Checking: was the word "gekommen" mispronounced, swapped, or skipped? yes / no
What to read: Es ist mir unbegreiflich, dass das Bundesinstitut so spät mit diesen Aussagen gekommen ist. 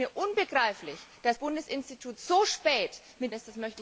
yes